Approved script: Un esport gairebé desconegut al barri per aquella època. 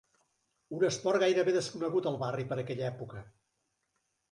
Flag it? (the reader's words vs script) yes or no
no